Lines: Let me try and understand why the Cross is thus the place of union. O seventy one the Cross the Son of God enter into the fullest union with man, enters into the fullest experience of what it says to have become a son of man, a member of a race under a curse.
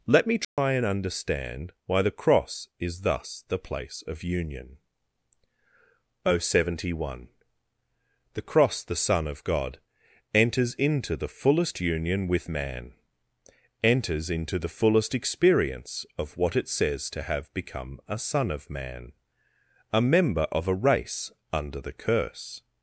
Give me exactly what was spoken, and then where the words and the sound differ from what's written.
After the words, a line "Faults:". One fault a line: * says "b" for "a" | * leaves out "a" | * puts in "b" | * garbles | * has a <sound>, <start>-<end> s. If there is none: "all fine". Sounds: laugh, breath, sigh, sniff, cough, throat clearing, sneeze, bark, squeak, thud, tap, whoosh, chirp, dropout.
Let me try and understand why the Cross is thus the place of union. O seventy one the Cross the Son of God enters into the fullest union with man, enters into the fullest experience of what it says to have become a son of man, a member of a race under the curse.
Faults:
* has a dropout, 0.4-0.6 s
* says "enters" for "enter"
* says "the" for "a"